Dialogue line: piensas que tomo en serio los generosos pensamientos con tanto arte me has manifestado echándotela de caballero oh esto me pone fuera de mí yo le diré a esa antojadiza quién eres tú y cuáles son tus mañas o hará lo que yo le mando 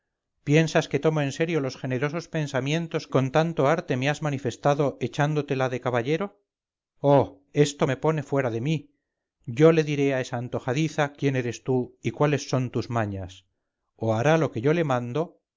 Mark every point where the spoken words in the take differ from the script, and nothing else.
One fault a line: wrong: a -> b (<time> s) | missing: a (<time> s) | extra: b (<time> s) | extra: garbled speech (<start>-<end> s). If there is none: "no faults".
no faults